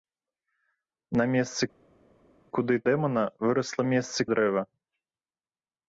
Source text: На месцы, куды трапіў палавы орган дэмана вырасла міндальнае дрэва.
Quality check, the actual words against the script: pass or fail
fail